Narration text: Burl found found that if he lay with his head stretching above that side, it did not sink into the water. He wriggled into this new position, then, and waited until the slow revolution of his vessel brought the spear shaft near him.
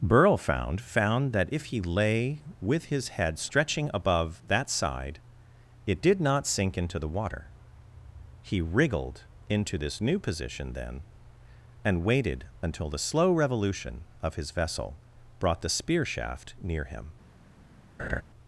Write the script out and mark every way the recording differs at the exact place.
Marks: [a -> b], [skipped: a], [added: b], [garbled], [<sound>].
Burl found found that if he lay with his head stretching above that side, it did not sink into the water. He wriggled into this new position, then, and waited until the slow revolution of his vessel brought the spear shaft near him. [laugh]